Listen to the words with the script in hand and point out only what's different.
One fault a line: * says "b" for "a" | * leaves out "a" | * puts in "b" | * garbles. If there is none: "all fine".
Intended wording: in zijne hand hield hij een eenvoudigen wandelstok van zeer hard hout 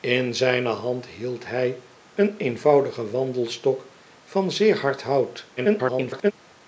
* garbles